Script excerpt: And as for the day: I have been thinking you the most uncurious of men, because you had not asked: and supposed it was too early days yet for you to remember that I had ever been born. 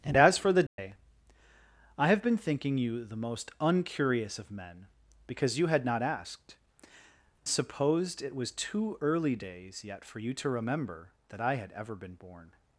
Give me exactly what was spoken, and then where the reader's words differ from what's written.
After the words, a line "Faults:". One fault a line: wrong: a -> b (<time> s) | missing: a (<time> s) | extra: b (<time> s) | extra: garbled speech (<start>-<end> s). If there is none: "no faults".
And as for the day: I have been thinking you the most uncurious of men, because you had not asked: supposed it was too early days yet for you to remember that I had ever been born.
Faults:
missing: and (6.5 s)